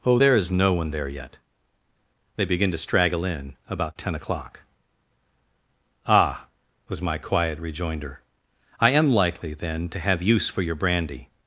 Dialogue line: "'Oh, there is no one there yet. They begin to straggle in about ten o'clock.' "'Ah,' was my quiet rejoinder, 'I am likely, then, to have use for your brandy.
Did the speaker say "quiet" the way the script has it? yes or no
yes